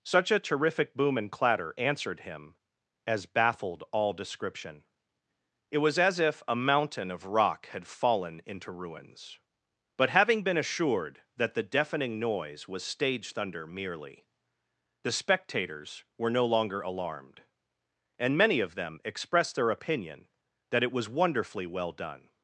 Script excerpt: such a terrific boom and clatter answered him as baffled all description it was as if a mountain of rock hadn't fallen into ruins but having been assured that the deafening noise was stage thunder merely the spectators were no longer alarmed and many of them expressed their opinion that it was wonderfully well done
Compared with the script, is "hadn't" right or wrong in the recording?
wrong